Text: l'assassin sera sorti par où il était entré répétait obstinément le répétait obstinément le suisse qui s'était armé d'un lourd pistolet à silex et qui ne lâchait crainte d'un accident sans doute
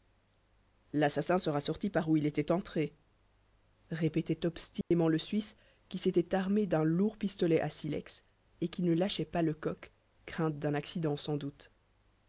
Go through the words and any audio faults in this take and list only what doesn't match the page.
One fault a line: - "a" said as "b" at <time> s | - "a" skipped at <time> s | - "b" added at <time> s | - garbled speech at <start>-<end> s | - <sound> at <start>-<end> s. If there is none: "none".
- dropout at 4.8-4.9 s
- "répétait obstinément le" skipped at 5.2 s
- "pas lecoq" added at 9.2 s